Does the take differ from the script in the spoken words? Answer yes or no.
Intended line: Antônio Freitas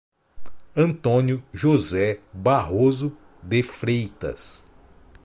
yes